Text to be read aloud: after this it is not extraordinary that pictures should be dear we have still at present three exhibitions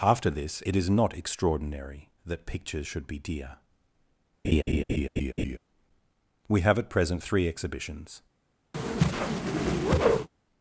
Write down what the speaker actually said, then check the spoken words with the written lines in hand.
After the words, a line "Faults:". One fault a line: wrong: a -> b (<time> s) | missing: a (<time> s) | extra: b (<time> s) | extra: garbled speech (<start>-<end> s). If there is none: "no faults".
after this it is not extraordinary that pictures should be dear we have at present three exhibitions
Faults:
missing: still (6.8 s)